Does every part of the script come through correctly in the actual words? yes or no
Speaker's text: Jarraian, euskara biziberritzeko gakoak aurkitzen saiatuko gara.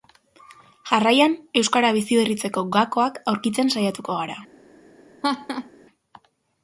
yes